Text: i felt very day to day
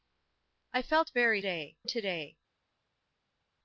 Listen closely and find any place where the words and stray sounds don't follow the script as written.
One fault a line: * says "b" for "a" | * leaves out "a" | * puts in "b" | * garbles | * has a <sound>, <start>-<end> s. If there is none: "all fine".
all fine